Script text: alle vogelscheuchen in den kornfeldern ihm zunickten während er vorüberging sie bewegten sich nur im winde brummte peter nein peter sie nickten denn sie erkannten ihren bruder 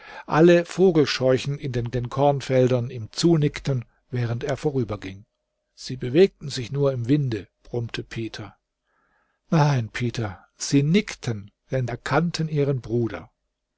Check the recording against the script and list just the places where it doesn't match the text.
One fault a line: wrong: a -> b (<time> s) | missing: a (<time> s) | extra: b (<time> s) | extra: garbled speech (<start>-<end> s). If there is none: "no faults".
extra: den (1.9 s)
missing: sie (11.9 s)